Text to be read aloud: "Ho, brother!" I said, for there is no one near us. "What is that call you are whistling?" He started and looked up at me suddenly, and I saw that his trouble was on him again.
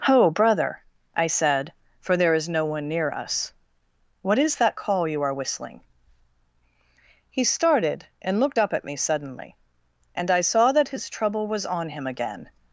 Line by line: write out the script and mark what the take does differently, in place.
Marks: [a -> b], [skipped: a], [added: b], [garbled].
"Ho, brother!" I said, for there is no one near us. "What is that call you are whistling?" He started and looked up at me suddenly, and I saw that his trouble was on him again.